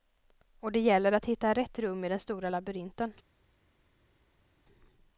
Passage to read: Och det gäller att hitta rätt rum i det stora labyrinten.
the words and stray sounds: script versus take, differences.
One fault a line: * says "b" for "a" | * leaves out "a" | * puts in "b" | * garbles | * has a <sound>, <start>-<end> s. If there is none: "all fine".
* says "den" for "det"